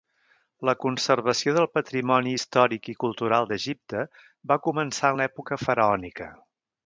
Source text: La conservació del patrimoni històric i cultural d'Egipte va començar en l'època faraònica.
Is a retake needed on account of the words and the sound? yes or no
no